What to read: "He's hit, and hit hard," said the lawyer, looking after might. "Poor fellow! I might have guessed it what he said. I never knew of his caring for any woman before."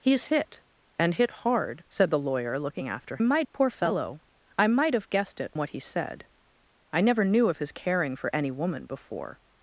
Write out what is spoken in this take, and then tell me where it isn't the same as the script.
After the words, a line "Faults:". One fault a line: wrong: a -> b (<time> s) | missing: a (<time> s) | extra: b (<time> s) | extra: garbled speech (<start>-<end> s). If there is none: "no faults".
"He's hit, and hit hard," said the lawyer, looking after might. "Poor fellow! I might have guessed it what he said. I never knew of his caring for any woman before."
Faults:
no faults